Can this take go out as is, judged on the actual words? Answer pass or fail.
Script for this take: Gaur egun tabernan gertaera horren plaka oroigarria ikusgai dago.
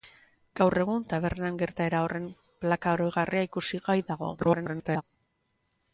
fail